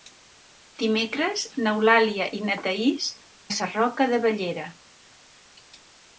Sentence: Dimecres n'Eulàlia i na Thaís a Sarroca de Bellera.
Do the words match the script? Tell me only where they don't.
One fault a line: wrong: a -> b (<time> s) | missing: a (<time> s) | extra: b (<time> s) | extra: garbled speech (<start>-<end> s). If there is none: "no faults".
no faults